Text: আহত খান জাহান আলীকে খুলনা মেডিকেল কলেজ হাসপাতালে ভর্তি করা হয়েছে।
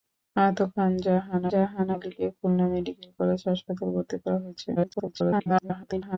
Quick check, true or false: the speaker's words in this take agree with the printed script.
false